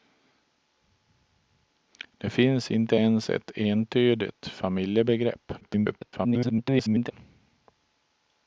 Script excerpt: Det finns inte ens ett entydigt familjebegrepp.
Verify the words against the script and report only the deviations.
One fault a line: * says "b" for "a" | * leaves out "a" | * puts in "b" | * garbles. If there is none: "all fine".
* garbles